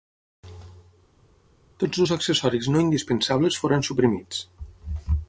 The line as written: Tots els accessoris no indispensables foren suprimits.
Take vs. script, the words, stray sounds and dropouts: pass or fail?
pass